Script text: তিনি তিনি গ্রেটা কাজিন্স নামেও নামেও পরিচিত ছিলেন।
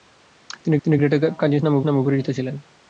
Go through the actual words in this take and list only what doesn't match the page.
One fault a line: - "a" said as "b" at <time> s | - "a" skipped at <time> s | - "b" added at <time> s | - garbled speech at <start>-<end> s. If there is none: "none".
none